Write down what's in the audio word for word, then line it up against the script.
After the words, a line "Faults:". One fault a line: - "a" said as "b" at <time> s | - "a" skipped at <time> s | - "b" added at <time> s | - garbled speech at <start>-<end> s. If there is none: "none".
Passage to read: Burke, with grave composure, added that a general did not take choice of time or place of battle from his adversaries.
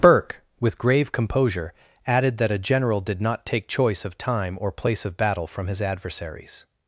Burke, with grave composure, added that a general did not take choice of time or place of battle from his adversaries.
Faults:
none